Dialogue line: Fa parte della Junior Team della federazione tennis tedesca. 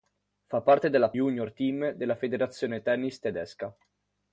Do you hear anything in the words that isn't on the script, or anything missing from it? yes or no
no